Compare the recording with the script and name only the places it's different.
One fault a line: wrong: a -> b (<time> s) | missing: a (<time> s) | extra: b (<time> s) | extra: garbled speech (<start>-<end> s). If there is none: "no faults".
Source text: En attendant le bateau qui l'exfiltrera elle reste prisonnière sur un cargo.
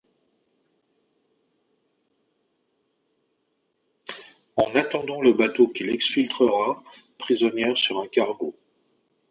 missing: elle reste (6.8 s)